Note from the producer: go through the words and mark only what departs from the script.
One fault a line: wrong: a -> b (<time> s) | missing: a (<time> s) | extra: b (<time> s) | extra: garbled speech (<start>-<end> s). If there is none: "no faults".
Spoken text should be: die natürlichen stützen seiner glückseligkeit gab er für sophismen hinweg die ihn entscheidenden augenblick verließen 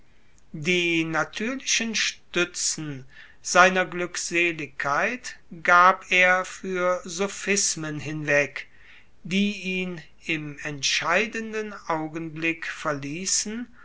extra: im (10.3 s)